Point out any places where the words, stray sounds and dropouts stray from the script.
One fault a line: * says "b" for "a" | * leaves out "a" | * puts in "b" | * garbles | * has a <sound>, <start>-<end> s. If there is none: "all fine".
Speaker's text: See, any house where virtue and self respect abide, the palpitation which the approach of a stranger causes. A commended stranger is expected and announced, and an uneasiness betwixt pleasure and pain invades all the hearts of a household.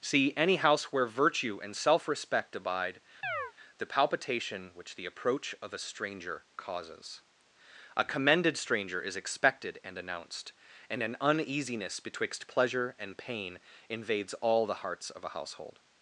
* has a chirp, 3.2-3.5 s